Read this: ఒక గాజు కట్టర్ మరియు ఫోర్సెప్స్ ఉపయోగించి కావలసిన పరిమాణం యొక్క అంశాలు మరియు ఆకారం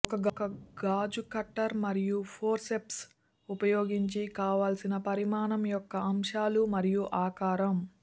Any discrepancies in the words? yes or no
no